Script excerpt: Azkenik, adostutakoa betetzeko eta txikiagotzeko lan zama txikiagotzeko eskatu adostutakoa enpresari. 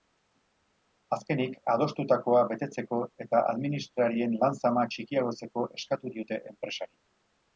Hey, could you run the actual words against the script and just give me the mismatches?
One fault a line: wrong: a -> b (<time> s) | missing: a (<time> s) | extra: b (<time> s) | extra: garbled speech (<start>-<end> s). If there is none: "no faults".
wrong: txikiagotzeko -> administrarien (3.5 s)
wrong: adostutakoa -> diote (6.2 s)